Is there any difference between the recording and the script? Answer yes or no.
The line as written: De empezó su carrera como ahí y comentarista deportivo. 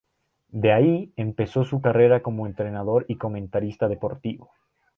yes